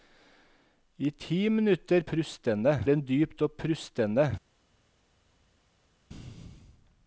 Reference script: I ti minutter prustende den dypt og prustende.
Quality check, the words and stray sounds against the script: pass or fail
pass